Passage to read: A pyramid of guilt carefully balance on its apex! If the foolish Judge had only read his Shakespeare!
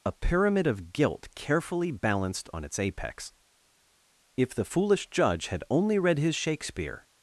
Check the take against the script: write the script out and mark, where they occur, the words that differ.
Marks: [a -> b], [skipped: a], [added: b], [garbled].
A pyramid of guilt carefully [balance -> balanced] on its apex! If the foolish Judge had only read his Shakespeare!